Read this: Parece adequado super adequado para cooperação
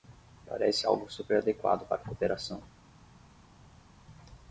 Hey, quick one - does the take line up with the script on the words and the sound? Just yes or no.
no